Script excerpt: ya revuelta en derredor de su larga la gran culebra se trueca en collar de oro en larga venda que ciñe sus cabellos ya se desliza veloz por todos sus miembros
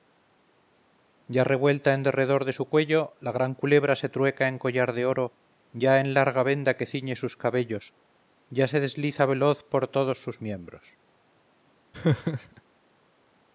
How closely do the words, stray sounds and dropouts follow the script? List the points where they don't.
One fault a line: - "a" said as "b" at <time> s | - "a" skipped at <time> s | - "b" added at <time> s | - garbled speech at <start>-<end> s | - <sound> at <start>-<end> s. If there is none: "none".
- "larga" said as "cuello" at 2.7 s
- "ya" added at 5.7 s
- laugh at 11.9-12.6 s